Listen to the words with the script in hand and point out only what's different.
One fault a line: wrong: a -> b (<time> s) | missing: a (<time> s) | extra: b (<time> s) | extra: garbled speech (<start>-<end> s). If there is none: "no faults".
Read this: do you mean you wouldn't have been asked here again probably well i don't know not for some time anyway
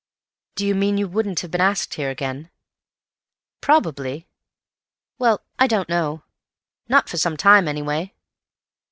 no faults